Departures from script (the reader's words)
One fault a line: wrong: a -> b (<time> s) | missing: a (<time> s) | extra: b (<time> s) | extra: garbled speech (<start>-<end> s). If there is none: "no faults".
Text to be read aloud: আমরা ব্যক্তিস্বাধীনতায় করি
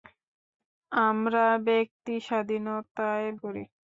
no faults